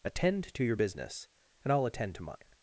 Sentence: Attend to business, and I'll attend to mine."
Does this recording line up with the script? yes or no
no